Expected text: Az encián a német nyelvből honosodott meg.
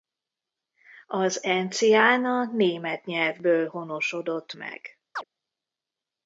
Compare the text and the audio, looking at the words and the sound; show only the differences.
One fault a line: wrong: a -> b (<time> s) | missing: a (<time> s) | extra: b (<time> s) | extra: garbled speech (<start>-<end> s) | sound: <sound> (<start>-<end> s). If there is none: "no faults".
sound: chirp (5.1-5.2 s)